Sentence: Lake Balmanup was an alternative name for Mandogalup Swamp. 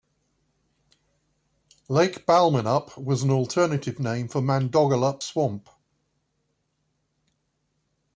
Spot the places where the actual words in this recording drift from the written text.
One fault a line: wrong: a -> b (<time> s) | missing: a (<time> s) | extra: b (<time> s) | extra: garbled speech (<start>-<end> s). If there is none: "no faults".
no faults